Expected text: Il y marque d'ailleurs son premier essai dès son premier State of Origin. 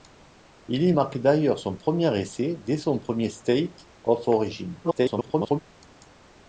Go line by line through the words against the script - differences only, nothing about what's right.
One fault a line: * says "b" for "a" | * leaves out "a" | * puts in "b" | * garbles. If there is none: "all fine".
* garbles